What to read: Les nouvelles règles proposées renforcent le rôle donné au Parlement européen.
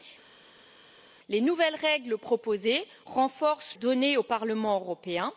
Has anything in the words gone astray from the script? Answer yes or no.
yes